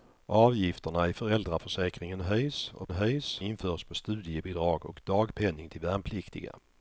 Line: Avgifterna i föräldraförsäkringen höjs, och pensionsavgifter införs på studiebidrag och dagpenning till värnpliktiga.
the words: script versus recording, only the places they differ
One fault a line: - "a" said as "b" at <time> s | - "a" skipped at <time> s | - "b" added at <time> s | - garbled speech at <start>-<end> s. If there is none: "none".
- "pensionsavgifter" said as "höjs" at 2.9 s